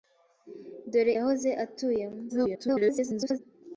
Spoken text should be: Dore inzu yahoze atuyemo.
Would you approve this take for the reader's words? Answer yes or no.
no